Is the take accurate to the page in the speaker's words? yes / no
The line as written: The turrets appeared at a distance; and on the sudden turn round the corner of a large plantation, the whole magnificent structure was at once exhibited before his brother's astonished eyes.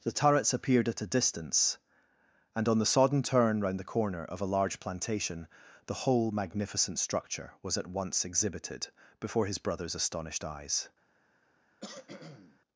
no